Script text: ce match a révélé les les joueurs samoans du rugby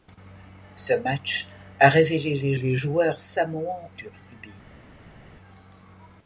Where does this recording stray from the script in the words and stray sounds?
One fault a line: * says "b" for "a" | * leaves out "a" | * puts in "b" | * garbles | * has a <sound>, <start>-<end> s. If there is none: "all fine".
all fine